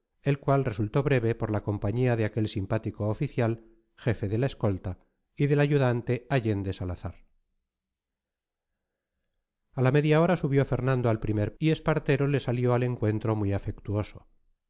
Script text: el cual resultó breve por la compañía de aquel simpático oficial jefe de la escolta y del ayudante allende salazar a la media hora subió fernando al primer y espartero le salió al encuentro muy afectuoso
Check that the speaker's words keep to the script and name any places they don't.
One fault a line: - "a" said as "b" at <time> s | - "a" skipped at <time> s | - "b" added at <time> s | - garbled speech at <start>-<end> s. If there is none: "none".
none